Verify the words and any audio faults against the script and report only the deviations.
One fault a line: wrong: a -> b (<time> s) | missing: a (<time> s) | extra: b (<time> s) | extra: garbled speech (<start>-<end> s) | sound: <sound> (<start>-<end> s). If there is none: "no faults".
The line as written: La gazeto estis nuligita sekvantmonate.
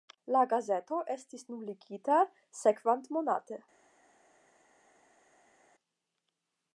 no faults